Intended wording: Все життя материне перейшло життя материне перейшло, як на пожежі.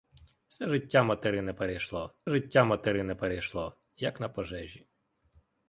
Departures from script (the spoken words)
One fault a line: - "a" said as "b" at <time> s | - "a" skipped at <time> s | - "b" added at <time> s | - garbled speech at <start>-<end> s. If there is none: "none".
none